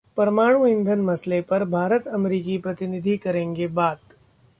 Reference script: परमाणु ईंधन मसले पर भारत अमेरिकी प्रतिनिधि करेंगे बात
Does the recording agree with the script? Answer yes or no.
yes